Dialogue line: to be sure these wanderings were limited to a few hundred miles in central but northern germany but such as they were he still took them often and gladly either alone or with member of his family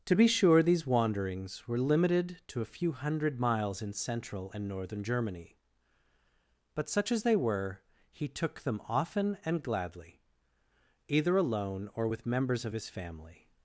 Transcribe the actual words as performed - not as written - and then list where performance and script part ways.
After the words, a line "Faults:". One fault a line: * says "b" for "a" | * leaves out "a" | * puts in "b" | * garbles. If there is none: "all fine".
to be sure these wanderings were limited to a few hundred miles in central and northern germany but such as they were he took them often and gladly either alone or with members of his family
Faults:
* says "and" for "but"
* leaves out "still"
* says "members" for "member"